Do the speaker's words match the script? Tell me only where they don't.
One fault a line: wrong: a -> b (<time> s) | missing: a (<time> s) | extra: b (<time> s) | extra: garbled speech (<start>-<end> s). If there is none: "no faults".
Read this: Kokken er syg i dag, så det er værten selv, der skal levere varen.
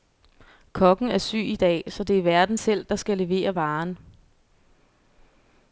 no faults